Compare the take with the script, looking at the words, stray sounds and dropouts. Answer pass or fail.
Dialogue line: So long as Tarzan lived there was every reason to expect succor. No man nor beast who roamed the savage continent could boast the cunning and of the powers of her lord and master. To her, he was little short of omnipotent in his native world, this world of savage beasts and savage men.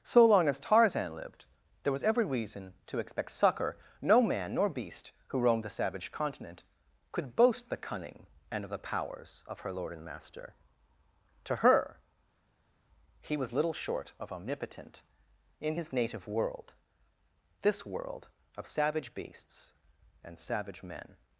pass